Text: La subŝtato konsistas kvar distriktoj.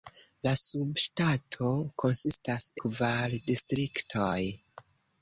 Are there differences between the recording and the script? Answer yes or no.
no